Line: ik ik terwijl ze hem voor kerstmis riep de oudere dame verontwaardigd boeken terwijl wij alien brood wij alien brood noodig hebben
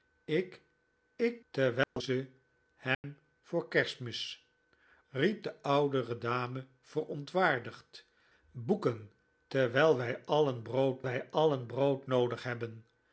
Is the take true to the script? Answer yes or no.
yes